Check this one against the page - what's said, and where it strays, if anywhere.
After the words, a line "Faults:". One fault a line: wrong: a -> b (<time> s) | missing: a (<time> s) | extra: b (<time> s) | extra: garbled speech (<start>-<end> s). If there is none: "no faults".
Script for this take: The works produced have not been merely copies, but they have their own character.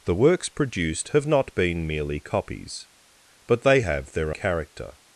The works produced have not been merely copies, but they have their character.
Faults:
missing: own (4.3 s)